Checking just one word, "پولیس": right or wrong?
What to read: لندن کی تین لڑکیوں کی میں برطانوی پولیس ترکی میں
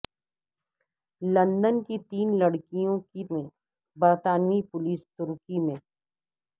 right